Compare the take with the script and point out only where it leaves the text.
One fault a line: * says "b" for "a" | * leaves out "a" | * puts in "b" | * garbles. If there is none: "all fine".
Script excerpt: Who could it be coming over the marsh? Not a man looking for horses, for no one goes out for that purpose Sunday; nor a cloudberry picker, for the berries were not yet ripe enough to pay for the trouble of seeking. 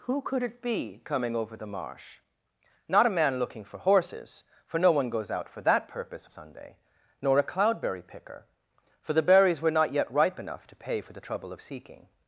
all fine